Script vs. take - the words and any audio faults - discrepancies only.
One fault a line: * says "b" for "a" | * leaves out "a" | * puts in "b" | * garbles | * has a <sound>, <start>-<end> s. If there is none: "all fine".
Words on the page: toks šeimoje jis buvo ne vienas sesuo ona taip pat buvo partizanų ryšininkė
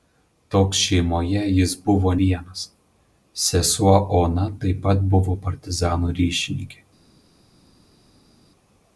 * leaves out "ne"